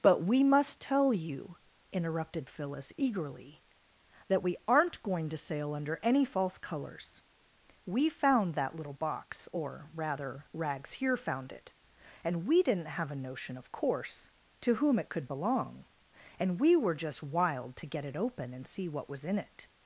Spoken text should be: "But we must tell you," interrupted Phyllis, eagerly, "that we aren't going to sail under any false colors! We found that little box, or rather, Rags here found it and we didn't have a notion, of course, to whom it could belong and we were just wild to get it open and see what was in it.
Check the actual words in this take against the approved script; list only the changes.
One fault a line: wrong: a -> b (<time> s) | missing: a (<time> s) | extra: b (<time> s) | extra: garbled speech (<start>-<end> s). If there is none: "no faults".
no faults